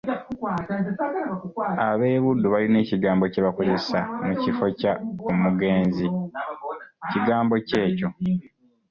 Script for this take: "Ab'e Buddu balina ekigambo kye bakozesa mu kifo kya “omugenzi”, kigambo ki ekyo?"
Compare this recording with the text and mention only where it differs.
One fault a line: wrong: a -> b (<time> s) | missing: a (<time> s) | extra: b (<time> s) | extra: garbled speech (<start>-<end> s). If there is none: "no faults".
no faults